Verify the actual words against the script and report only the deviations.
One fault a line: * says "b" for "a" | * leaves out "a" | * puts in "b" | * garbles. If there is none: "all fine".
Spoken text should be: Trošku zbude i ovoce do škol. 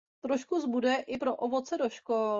* puts in "pro"